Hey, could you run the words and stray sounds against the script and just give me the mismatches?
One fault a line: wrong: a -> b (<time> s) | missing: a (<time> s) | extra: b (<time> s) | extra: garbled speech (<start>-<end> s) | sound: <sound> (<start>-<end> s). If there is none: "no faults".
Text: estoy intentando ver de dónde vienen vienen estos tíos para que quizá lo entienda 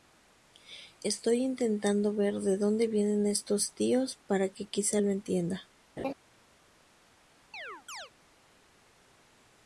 missing: vienen (3.3 s)
sound: laugh (6.0-6.1 s)
sound: chirp (7.5-8.1 s)